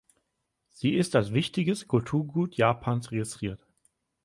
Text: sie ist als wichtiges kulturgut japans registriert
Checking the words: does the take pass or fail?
pass